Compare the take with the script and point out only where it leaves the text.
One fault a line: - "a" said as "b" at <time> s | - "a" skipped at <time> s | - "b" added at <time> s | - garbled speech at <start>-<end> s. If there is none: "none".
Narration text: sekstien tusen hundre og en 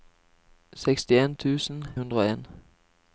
none